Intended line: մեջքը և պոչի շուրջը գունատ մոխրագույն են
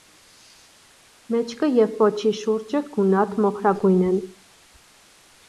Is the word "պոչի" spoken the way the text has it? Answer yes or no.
yes